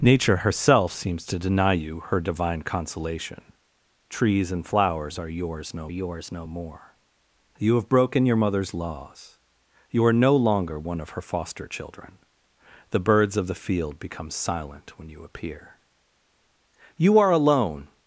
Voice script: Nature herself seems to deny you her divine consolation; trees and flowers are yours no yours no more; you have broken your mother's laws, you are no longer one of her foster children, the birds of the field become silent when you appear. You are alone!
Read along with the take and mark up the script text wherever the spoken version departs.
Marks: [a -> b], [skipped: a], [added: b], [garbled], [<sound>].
Nature herself seems to deny you her divine consolation; trees and flowers are yours no yours no more; you have broken your mother's laws, you are no longer one of her foster children, the birds of the field become silent when you appear. You are alone!